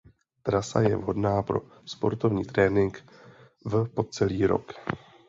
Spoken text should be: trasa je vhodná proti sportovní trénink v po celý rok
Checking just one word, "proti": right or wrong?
wrong